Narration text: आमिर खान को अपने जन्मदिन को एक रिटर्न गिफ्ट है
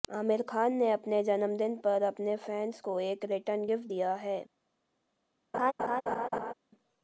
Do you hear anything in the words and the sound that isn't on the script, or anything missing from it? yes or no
yes